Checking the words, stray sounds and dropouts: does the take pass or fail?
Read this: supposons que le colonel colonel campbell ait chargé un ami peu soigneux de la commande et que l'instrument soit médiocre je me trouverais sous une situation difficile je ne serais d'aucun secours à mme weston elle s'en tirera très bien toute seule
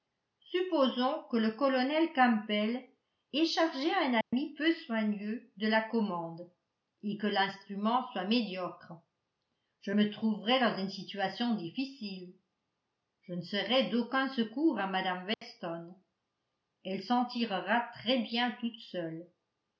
fail